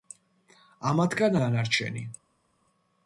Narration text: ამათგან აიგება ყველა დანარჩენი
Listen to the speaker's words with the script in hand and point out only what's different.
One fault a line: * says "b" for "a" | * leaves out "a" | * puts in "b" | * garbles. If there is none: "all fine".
* leaves out "აიგება ყველა"